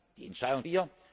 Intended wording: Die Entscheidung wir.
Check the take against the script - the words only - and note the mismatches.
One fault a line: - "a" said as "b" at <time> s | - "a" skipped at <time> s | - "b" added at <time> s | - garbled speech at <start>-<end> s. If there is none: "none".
none